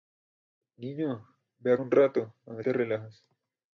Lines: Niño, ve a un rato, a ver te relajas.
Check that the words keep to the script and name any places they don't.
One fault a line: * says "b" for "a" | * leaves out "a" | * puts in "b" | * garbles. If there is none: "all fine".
all fine